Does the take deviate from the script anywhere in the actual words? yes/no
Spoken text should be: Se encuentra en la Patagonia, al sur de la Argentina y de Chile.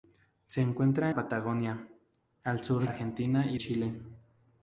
yes